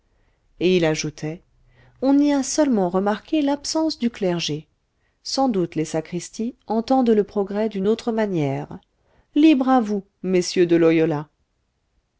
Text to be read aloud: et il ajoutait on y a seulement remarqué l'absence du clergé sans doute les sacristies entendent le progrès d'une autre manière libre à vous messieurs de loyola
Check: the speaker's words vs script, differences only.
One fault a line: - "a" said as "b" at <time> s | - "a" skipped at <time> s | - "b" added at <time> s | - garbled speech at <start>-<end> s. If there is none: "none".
none